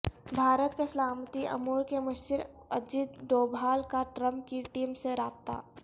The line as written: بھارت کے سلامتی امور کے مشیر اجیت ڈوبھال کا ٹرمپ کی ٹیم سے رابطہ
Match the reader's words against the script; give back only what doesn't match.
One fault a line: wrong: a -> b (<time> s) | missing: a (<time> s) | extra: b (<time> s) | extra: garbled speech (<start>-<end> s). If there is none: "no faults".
no faults